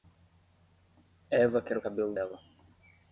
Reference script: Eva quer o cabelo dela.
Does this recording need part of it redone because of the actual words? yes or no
no